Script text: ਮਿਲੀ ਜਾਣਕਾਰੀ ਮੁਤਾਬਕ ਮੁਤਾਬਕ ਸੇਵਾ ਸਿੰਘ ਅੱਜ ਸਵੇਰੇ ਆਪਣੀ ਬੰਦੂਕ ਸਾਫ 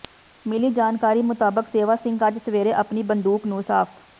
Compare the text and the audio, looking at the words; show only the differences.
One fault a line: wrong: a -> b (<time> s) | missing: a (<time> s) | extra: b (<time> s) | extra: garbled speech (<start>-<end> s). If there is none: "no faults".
missing: ਮੁਤਾਬਕ (1.7 s)
extra: ਨੂੰ (3.5 s)